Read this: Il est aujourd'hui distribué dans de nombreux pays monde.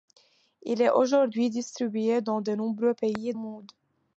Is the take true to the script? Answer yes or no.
yes